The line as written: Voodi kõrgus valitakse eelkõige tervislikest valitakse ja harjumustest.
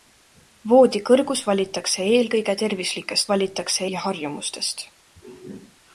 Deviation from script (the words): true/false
false